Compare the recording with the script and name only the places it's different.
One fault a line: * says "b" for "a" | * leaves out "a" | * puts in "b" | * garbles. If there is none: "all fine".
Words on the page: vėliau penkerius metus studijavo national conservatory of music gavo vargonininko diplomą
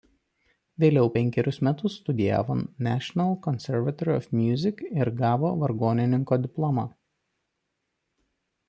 * puts in "ir"